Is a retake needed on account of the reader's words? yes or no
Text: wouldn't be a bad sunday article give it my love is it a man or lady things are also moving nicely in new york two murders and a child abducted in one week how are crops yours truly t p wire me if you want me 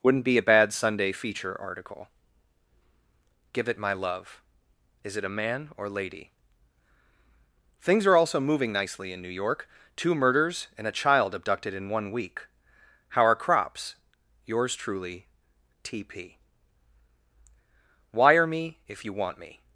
yes